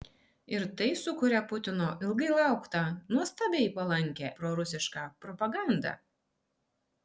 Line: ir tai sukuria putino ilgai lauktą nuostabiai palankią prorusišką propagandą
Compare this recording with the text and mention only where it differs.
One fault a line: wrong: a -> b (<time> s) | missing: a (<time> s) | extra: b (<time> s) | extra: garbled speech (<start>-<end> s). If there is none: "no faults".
no faults